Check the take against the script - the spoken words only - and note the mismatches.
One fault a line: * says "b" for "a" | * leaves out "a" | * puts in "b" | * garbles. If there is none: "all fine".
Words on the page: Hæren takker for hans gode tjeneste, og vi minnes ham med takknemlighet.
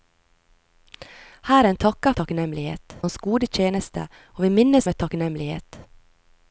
* says "takknemlighet" for "for"
* leaves out "ham"